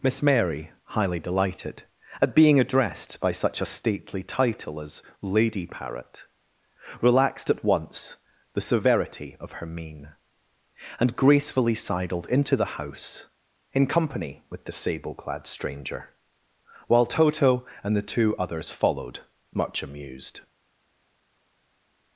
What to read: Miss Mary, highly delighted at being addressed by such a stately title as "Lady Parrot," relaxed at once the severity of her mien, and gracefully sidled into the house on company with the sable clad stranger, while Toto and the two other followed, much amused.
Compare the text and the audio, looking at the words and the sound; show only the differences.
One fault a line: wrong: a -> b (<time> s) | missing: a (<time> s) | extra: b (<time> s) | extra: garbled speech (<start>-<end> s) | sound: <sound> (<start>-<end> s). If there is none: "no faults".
wrong: on -> in (13.7 s)
wrong: other -> others (18.4 s)